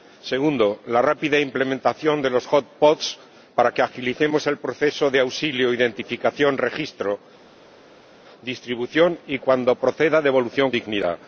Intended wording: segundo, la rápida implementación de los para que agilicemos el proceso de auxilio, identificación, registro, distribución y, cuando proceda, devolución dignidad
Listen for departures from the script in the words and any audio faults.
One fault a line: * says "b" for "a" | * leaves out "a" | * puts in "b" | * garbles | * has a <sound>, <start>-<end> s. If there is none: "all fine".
all fine